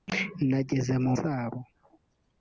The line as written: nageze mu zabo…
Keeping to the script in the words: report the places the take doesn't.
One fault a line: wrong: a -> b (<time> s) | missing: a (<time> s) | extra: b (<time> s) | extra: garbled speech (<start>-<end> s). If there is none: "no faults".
no faults